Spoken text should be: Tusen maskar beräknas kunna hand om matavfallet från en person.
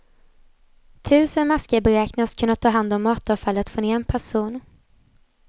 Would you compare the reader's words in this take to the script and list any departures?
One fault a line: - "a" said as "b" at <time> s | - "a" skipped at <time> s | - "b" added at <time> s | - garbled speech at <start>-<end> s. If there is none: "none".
- "ta" added at 2.5 s